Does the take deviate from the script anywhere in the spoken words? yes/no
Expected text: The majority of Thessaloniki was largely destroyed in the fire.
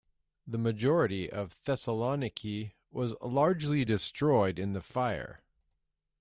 no